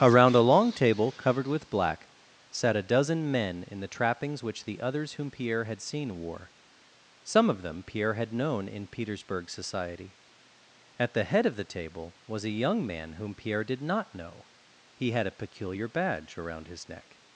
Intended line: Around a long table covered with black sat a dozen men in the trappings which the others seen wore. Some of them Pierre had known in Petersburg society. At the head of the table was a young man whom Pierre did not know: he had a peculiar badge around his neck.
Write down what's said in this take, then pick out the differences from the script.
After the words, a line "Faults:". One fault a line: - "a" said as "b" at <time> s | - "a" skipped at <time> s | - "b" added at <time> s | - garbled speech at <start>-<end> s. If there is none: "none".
Around a long table covered with black sat a dozen men in the trappings which the others whom Pierre had seen wore. Some of them Pierre had known in Petersburg society. At the head of the table was a young man whom Pierre did not know: he had a peculiar badge around his neck.
Faults:
- "whom Pierre had" added at 5.1 s